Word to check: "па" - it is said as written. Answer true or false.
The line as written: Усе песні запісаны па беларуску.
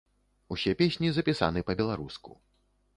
true